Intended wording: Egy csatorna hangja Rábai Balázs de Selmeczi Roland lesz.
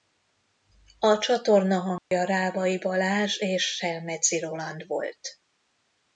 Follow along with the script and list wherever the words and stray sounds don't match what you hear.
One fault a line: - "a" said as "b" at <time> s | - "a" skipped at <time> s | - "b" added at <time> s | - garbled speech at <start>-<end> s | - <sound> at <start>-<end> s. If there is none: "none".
- "Egy" said as "A" at 1.0 s
- dropout at 2.0-2.1 s
- "de" said as "és" at 3.4 s
- "lesz" said as "volt" at 4.9 s